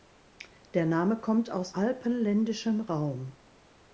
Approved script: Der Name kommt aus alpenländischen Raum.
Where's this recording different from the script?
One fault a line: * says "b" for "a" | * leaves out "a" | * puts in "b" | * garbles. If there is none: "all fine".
all fine